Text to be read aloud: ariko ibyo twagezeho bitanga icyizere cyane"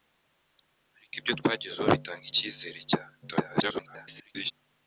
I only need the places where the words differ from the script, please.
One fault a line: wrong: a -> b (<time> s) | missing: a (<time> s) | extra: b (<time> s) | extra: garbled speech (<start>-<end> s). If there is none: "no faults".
extra: garbled speech (3.2-4.5 s)